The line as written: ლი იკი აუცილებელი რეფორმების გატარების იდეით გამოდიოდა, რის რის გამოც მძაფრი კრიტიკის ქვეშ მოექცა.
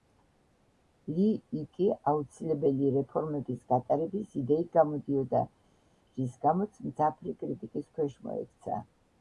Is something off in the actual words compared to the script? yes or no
yes